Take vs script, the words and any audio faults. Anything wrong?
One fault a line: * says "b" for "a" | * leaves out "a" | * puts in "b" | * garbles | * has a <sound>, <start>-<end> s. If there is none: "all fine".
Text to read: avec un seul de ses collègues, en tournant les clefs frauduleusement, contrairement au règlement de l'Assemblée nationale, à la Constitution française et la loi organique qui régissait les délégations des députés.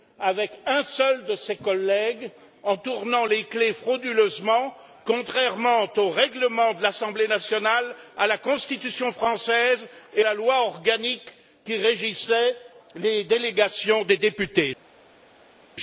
all fine